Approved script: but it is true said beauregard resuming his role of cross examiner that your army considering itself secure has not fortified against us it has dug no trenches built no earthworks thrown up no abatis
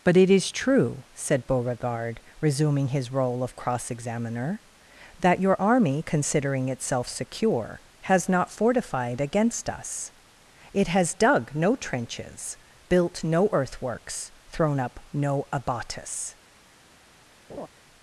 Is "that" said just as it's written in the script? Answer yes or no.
yes